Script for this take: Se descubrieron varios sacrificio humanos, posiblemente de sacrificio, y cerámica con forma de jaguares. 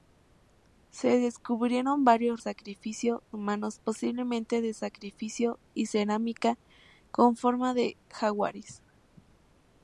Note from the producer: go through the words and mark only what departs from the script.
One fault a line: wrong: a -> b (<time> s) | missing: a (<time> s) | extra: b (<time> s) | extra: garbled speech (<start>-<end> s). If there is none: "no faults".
no faults